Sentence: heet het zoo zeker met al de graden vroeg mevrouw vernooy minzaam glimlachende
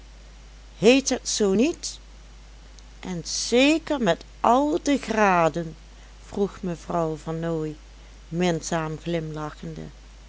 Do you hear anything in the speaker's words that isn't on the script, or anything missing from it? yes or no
yes